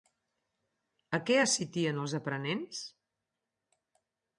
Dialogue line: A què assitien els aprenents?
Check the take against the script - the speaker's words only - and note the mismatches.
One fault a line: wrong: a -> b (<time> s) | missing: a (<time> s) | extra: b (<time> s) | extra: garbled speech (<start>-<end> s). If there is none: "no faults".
no faults